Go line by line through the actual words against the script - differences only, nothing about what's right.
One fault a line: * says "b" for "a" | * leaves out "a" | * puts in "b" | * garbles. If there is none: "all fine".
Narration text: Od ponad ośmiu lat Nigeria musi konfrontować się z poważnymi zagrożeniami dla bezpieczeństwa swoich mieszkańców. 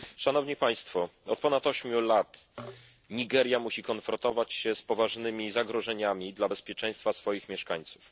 all fine